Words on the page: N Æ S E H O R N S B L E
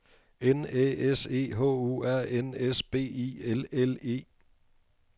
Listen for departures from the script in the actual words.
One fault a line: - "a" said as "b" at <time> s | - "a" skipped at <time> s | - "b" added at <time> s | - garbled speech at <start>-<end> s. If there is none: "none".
- "I L" added at 3.0 s